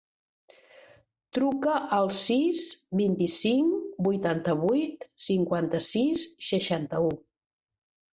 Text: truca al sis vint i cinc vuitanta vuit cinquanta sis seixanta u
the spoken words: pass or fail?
pass